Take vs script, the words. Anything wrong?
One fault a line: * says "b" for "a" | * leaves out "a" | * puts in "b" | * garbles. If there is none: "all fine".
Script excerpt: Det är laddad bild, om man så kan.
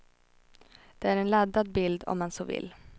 * puts in "en"
* says "vill" for "kan"